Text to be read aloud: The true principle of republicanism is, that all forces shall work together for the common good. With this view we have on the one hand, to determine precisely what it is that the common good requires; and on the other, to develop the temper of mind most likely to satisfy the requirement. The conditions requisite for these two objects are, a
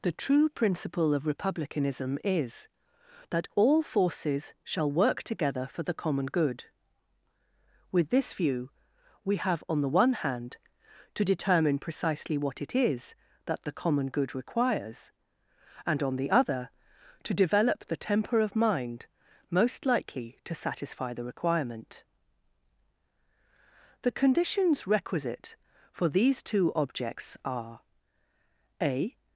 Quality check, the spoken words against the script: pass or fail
pass